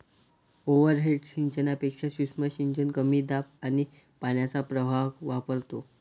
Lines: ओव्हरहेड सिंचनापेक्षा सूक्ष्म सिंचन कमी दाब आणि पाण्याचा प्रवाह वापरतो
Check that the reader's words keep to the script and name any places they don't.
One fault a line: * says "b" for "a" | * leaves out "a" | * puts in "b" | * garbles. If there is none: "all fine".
all fine